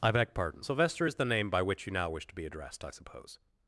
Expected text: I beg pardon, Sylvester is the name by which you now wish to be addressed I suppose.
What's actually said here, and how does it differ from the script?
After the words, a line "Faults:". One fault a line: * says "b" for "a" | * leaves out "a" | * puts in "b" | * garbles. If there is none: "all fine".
I beg pardon, Sylvester is the name by which you now wish to be addressed I suppose.
Faults:
all fine